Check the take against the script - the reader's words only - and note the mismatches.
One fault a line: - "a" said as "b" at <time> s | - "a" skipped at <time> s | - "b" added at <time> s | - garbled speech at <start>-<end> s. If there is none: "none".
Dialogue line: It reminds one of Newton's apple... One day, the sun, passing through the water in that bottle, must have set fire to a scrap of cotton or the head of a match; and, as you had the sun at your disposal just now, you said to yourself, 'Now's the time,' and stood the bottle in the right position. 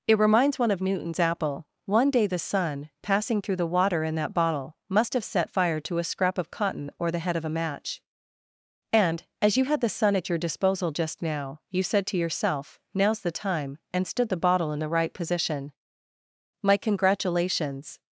- "My congratulations" added at 16.6 s